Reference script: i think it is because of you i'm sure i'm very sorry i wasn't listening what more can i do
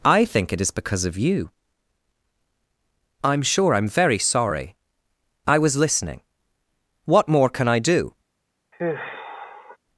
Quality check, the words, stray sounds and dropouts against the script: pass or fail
fail